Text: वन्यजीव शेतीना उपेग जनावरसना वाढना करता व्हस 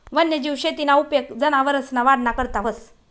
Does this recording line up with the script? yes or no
yes